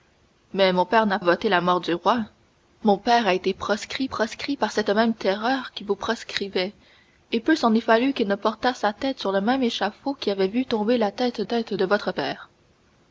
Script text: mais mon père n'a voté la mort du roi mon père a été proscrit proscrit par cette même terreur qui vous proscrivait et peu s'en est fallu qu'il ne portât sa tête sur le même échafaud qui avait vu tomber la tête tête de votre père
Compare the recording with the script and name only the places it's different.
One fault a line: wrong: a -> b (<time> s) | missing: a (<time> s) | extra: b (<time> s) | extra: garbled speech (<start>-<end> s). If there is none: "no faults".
no faults